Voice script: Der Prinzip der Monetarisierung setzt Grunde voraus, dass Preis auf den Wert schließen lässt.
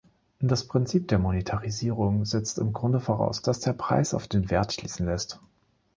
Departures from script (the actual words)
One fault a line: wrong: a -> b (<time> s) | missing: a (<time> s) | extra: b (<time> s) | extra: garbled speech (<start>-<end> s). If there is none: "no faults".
wrong: Der -> Das (0.4 s)
extra: im (2.6 s)
extra: der (3.6 s)